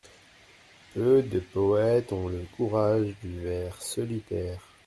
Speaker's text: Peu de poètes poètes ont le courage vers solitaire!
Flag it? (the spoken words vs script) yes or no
yes